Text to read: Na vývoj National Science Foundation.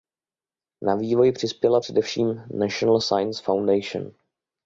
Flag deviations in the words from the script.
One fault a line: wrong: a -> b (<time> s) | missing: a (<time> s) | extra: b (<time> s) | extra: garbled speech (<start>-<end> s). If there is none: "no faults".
extra: přispěla především (1.3 s)